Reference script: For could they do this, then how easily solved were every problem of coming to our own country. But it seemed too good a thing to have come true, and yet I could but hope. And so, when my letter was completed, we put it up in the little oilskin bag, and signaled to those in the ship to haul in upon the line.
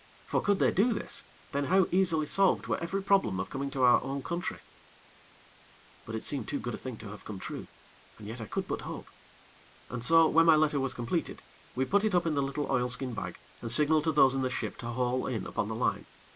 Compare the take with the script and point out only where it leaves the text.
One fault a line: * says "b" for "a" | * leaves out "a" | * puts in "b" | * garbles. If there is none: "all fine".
all fine